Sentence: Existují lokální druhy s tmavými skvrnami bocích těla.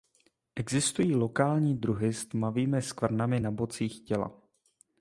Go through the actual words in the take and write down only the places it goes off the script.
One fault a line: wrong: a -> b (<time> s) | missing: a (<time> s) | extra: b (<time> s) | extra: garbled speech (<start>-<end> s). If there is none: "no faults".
extra: na (3.4 s)